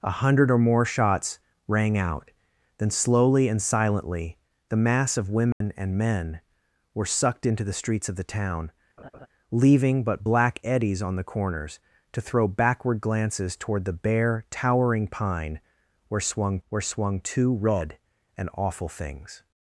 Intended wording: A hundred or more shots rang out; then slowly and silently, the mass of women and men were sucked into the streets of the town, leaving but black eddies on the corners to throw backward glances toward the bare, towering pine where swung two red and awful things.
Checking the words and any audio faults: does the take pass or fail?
fail